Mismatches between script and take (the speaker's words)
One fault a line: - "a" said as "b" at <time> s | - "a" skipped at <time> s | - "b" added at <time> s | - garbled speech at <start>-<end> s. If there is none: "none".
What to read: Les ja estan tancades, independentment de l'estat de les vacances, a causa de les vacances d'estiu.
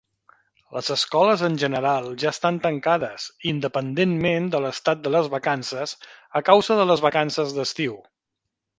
- "escoles en general" added at 0.9 s